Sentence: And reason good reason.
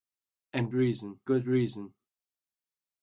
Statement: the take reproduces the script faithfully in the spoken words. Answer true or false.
true